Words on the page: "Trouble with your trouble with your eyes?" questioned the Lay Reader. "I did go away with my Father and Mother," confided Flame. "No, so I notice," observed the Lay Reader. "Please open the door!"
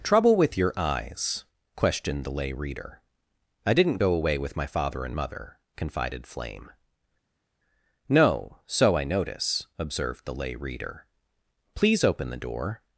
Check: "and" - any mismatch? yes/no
no